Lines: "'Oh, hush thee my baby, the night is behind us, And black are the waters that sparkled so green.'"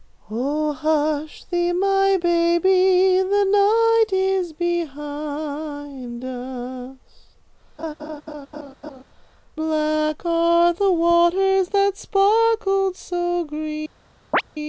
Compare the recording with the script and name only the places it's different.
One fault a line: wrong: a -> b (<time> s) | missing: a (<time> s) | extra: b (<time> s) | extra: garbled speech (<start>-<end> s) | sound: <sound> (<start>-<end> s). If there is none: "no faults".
missing: And (7.3 s)
sound: laugh (7.8-9.0 s)
sound: chirp (14.3-14.4 s)